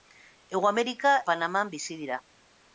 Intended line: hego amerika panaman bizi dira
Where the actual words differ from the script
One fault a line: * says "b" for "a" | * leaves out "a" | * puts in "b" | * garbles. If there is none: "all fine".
all fine